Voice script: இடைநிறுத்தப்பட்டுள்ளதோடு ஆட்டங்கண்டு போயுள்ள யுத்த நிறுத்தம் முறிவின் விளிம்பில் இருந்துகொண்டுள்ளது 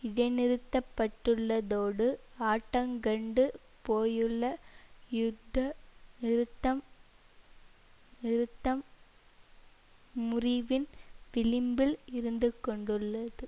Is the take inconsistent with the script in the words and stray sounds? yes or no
yes